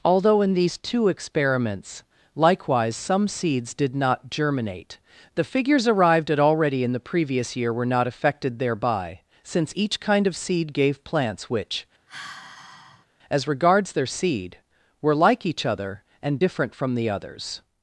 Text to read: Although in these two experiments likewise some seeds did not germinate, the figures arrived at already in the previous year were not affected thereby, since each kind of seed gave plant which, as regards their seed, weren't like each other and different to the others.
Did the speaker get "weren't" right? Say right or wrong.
wrong